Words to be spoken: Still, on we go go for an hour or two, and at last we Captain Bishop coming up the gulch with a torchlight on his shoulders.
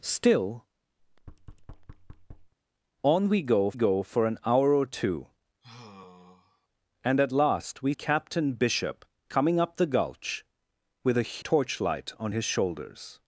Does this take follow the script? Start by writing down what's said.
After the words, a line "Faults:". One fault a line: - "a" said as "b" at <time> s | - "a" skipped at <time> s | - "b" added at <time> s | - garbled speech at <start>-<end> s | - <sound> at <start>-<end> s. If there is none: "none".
Still, on we go go for an hour or two, and at last we Captain Bishop coming up the gulch with a torchlight on his shoulders.
Faults:
- thud at 1.0-2.5 s
- sigh at 5.6-6.7 s